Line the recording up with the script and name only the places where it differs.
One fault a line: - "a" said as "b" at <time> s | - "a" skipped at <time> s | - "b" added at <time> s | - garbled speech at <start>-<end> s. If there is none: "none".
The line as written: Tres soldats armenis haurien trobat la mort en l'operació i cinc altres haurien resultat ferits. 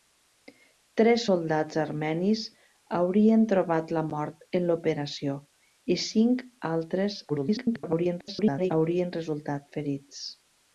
- garbled speech at 7.3-8.7 s